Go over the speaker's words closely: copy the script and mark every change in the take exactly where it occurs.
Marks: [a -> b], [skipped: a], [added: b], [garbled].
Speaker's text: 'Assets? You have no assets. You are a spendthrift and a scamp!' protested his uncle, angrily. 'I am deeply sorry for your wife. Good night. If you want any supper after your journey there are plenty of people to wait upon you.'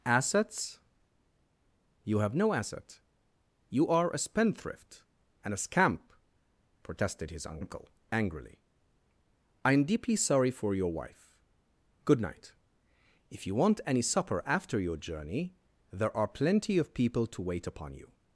'Assets? You have no [assets. -> asset] You are a spendthrift and a scamp!' protested his uncle, angrily. 'I am deeply sorry for your wife. Good night. If you want any supper after your journey there are plenty of people to wait upon you.'